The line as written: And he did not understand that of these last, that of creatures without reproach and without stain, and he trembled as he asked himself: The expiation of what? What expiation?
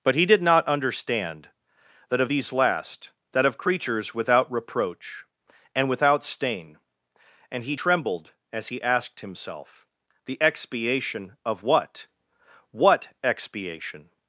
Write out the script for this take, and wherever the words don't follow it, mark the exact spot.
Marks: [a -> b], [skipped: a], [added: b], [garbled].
[And -> But] he did not understand that of these last, that of creatures without reproach and without stain, and he trembled as he asked himself: The expiation of what? What expiation?